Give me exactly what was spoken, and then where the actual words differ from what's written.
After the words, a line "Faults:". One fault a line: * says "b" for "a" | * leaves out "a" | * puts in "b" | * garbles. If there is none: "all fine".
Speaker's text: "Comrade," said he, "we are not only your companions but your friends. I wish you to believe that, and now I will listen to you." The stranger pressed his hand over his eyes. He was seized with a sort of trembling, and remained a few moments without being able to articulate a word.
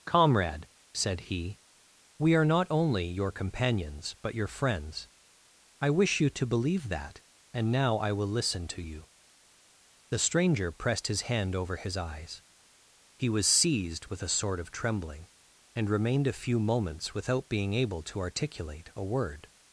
"Comrade," said he, "we are not only your companions but your friends. I wish you to believe that, and now I will listen to you." The stranger pressed his hand over his eyes. He was seized with a sort of trembling, and remained a few moments without being able to articulate a word.
Faults:
all fine